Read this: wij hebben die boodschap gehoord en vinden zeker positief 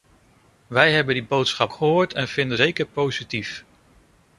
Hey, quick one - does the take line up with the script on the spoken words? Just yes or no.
yes